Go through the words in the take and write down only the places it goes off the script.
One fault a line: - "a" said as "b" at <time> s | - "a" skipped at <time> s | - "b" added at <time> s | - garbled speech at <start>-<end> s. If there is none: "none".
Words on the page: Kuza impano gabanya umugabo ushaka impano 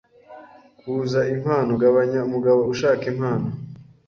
none